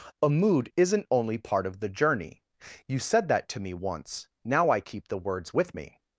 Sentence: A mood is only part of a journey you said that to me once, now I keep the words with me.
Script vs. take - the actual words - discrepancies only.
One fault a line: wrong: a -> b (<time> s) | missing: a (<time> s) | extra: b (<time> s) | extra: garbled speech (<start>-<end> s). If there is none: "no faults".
wrong: is -> isn't (0.8 s)
wrong: a -> the (1.8 s)